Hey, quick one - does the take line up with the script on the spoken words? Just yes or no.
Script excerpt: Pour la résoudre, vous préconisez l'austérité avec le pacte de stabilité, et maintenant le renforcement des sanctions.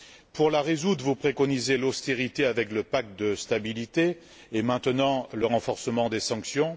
yes